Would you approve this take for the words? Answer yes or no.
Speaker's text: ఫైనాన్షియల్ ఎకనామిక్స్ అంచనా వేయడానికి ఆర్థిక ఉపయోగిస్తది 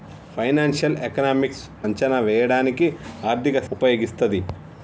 yes